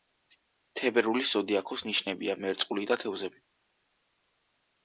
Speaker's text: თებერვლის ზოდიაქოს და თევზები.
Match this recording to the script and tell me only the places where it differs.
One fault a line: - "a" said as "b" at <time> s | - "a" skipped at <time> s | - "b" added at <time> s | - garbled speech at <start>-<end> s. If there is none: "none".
- "ნიშნებია მერწყული" added at 1.9 s